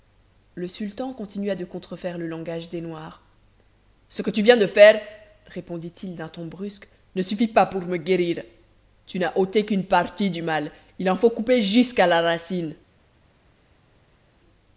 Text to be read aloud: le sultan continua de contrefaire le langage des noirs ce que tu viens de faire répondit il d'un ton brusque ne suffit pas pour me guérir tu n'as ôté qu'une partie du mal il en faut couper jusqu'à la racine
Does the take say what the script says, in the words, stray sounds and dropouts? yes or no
yes